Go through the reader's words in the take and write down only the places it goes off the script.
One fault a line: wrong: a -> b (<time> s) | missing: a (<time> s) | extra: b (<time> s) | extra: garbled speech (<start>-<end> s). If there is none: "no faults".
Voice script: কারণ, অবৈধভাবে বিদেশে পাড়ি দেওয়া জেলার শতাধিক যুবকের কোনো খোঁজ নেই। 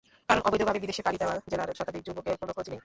no faults